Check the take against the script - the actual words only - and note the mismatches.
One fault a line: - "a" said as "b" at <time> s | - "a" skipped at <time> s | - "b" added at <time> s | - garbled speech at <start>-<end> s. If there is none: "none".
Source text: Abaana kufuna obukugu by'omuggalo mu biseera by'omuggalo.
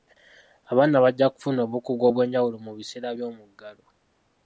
- "bajja" added at 1.0 s
- "by'omuggalo" said as "obw'enjawulo" at 2.1 s